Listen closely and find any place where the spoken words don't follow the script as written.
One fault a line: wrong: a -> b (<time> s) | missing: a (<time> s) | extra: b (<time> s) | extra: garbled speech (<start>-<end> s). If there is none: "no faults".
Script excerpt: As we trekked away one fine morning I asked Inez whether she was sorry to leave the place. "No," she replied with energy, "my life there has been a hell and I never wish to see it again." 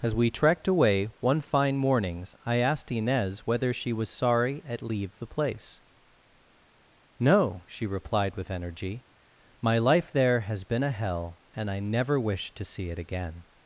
wrong: morning -> mornings (1.8 s)
wrong: to -> at (4.7 s)